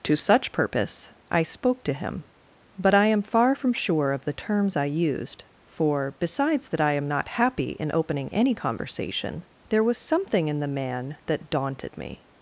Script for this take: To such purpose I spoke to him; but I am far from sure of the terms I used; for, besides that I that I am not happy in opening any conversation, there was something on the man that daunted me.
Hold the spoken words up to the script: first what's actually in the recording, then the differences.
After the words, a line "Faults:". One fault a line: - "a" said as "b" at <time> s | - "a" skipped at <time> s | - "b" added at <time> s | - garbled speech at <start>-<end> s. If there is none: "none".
To such purpose I spoke to him; but I am far from sure of the terms I used; for, besides that I am not happy in opening any conversation, there was something in the man that daunted me.
Faults:
- "that I" skipped at 6.9 s
- "on" said as "in" at 10.5 s